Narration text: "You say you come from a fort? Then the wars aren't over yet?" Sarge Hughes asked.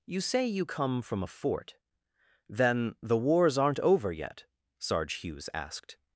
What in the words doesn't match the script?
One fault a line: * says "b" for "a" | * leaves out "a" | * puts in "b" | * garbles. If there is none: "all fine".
all fine